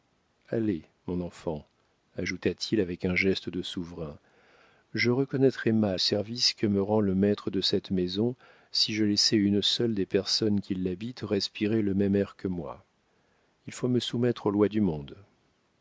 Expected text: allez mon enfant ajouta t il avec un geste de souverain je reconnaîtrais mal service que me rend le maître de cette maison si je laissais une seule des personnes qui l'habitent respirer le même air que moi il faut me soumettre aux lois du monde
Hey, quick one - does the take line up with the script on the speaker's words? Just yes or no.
yes